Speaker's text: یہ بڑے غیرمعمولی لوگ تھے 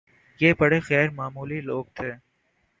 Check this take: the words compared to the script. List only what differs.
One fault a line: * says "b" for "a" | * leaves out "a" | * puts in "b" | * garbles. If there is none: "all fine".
all fine